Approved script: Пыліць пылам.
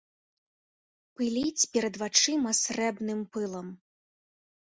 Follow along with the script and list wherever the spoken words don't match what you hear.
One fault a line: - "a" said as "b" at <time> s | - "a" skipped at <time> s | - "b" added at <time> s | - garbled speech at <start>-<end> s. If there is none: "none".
- "перад вачыма срэбным" added at 1.8 s